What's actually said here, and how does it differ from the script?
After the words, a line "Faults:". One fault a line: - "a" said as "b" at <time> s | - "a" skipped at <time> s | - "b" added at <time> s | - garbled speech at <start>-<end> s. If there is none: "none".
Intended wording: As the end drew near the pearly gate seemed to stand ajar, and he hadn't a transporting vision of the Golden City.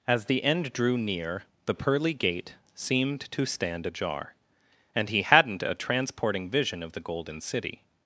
As the end drew near the pearly gate seemed to stand ajar, and he hadn't a transporting vision of the Golden City.
Faults:
none